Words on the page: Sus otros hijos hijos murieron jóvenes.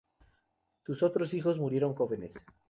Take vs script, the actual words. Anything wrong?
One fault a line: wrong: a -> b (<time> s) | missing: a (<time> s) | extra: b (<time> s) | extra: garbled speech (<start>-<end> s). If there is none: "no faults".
missing: hijos (1.6 s)